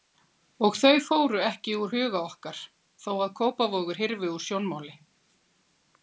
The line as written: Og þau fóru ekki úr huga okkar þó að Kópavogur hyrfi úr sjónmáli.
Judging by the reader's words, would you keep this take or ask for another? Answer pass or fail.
pass